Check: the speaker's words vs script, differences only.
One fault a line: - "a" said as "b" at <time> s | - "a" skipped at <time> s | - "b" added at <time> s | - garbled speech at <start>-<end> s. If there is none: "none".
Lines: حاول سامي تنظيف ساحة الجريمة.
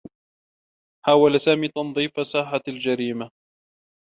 none